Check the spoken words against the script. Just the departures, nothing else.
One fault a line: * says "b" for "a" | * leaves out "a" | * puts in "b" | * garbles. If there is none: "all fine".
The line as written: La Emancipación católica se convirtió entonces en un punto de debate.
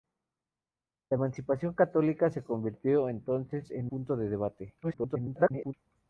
* leaves out "un"
* garbles